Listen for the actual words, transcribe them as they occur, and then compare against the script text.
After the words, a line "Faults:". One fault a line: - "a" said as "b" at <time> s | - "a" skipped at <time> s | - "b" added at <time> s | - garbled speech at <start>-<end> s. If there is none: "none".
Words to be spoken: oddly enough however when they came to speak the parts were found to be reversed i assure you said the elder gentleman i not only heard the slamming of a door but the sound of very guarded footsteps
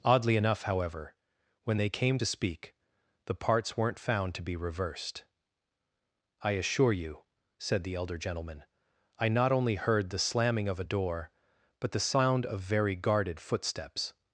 oddly enough however when they came to speak the parts weren't found to be reversed i assure you said the elder gentleman i not only heard the slamming of a door but the sound of very guarded footsteps
Faults:
- "were" said as "weren't" at 3.8 s